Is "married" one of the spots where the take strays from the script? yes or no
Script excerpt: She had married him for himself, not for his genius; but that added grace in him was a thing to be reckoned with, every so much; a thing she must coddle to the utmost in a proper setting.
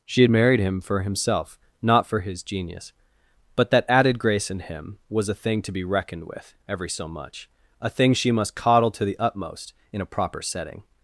no